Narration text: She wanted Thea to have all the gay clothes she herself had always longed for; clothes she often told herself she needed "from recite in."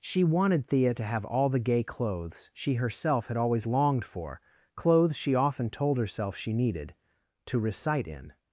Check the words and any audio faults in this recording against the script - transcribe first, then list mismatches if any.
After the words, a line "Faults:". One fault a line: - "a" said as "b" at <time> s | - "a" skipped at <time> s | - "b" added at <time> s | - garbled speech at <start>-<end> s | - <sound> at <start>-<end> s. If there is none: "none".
She wanted Thea to have all the gay clothes she herself had always longed for; clothes she often told herself she needed "to recite in."
Faults:
- "from" said as "to" at 7.5 s